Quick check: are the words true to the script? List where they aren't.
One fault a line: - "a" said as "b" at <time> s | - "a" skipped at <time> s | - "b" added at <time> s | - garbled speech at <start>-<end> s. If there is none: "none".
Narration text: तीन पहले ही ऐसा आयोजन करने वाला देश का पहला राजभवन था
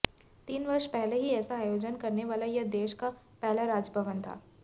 - "वर्ष" added at 0.7 s
- "यह" added at 2.5 s